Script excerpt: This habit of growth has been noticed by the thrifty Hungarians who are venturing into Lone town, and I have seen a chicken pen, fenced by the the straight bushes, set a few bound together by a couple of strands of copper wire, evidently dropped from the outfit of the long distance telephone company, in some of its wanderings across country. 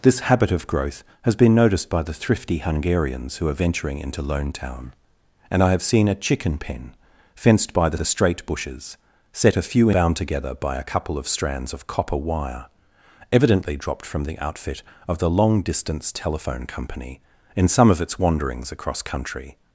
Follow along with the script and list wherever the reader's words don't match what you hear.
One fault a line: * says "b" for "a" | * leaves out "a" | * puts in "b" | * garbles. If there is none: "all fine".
all fine